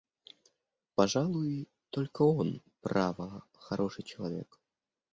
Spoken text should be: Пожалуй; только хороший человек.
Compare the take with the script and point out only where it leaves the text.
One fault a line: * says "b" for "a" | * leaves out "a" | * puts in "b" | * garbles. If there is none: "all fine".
* puts in "он право"